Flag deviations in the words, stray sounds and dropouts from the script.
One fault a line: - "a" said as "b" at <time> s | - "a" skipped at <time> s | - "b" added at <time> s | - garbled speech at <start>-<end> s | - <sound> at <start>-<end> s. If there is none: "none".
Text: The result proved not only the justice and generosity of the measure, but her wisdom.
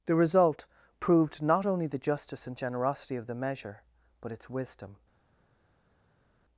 - "her" said as "its" at 4.3 s